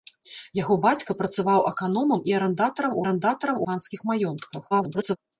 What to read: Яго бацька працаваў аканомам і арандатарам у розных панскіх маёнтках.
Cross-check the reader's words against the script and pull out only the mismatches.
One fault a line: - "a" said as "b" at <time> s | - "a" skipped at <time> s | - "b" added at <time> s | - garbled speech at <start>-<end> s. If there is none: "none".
- "розных" said as "арандатарам" at 3.0 s
- garbled speech at 4.7-5.2 s